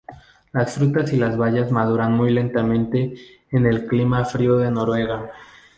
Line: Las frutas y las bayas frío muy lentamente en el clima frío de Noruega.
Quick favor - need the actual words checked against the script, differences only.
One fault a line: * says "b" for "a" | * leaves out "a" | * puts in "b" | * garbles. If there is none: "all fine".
* says "maduran" for "frío"